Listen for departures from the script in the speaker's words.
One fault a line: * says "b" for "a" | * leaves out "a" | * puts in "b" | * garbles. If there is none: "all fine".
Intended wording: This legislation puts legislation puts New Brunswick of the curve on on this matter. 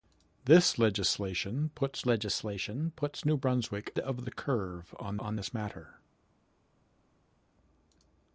all fine